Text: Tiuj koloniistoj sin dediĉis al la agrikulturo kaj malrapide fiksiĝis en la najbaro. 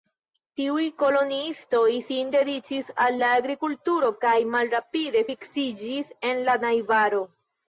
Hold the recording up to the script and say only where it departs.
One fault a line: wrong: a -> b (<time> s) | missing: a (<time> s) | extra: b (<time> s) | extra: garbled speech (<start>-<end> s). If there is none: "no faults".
no faults